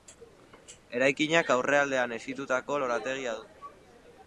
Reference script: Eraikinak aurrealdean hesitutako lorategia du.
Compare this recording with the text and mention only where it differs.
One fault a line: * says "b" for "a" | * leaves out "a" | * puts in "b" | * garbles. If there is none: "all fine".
all fine